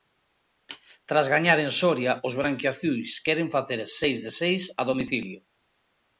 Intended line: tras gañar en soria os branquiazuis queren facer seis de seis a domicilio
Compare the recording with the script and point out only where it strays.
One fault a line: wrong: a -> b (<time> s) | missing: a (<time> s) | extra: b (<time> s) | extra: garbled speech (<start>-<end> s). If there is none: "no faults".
no faults